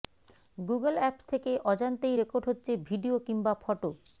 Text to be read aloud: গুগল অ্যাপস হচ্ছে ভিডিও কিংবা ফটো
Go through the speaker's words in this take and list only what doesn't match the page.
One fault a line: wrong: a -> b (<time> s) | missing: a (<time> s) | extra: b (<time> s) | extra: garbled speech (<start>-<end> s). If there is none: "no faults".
extra: থেকে অজান্তেই রেকর্ড (1.2 s)